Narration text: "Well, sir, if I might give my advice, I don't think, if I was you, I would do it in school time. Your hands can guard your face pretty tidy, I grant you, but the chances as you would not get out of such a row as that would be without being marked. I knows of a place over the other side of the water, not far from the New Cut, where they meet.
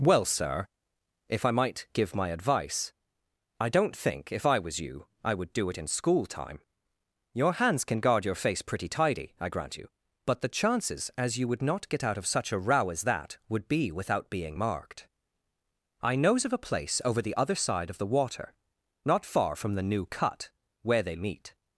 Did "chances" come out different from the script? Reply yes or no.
no